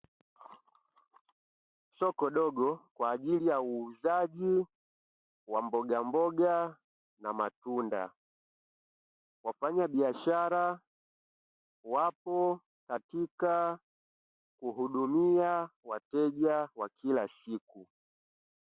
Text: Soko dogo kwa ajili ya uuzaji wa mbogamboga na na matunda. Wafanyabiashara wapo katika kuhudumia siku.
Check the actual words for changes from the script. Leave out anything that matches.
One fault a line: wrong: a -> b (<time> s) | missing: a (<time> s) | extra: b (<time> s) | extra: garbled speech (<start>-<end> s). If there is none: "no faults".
missing: na (7.3 s)
extra: wateja wa kila (15.8 s)